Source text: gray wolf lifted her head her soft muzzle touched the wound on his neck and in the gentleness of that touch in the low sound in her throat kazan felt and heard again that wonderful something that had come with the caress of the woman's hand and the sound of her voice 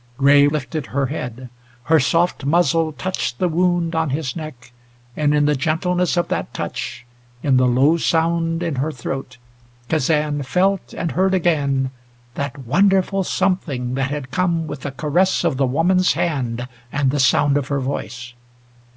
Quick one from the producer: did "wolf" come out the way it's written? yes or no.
no